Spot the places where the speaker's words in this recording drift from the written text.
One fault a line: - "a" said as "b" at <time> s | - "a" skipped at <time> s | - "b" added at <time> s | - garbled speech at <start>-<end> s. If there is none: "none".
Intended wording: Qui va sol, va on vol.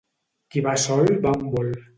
none